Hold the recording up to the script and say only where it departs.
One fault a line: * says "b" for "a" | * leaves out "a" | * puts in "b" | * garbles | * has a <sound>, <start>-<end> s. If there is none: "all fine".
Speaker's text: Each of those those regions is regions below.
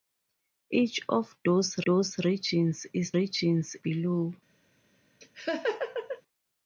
* has a laugh, 5.2-6.2 s